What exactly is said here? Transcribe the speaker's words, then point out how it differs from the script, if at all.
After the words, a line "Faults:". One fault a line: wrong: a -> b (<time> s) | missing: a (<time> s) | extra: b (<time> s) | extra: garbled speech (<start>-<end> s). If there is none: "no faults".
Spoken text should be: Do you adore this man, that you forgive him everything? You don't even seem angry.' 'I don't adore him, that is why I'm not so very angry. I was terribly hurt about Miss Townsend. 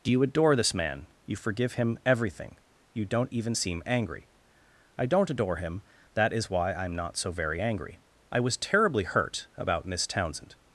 Do you adore this man, you forgive him everything? You don't even seem angry.' 'I don't adore him, that is why I'm not so very angry. I was terribly hurt about Miss Townsend.
Faults:
missing: that (1.1 s)